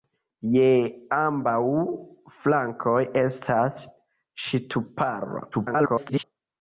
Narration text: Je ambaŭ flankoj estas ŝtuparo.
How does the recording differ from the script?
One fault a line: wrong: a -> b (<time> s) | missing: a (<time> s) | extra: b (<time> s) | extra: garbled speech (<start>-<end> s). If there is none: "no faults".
extra: garbled speech (5.5-6.2 s)